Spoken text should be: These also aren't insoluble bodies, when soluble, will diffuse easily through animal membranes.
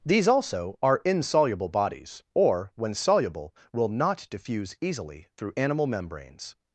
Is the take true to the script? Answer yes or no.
no